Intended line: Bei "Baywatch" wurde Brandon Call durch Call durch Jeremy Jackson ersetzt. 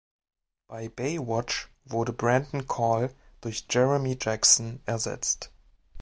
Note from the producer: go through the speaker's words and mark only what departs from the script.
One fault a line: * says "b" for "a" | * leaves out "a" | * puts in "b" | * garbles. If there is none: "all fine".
* leaves out "Call durch"